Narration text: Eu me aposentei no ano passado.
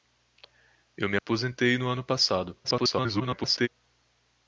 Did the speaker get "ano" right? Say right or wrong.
right